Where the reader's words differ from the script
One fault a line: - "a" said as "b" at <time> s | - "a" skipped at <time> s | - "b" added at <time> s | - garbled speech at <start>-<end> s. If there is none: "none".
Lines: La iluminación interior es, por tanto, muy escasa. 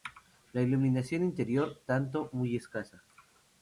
- "es por" skipped at 1.8 s